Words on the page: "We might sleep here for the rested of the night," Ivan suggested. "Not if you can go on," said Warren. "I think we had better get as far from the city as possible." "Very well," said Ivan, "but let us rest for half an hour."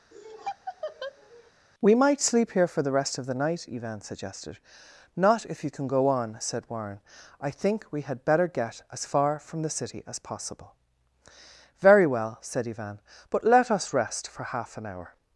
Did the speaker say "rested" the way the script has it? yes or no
no